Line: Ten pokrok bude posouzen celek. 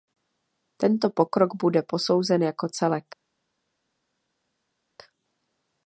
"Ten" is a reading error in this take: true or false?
true